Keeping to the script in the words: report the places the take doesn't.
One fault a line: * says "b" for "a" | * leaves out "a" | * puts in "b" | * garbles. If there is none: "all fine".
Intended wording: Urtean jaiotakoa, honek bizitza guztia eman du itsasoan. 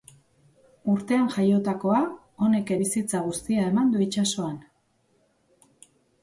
all fine